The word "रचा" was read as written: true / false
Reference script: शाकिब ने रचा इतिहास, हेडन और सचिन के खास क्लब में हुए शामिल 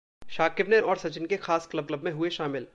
false